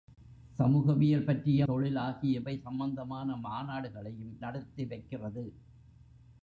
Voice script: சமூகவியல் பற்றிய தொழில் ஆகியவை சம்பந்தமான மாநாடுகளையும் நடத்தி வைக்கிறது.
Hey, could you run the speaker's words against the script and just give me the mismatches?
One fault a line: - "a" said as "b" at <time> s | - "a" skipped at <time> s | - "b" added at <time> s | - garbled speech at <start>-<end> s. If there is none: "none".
none